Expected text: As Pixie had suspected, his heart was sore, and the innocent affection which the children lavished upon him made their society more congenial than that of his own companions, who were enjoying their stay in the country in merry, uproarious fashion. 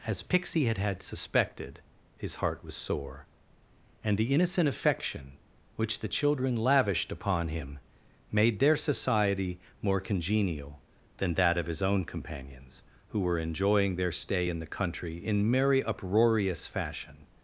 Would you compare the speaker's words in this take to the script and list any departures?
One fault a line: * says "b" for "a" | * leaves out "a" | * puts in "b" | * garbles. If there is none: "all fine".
* puts in "had"